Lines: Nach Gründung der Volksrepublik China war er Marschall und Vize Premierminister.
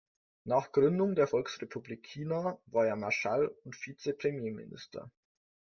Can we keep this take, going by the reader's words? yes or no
yes